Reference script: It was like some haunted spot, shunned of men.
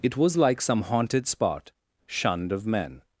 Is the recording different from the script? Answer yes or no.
no